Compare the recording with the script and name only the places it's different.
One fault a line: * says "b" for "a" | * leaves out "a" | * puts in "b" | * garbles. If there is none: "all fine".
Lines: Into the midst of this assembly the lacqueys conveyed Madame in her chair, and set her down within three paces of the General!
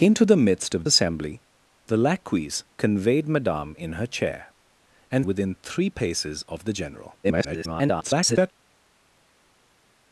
* leaves out "this"
* leaves out "set her down"
* garbles